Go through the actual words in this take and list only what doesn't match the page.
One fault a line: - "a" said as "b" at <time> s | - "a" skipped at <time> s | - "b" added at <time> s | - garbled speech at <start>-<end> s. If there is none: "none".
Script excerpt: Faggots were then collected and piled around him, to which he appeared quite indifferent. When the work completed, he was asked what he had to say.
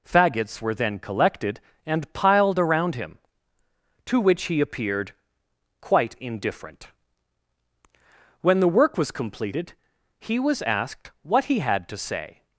- "was" added at 9.0 s